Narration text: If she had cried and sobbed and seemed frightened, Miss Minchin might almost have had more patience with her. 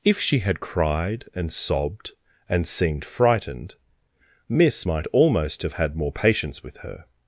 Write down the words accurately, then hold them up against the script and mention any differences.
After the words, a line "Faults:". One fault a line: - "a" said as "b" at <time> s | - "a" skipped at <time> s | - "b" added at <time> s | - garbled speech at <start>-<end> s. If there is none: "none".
If she had cried and sobbed and seemed frightened, Miss might almost have had more patience with her.
Faults:
- "Minchin" skipped at 4.9 s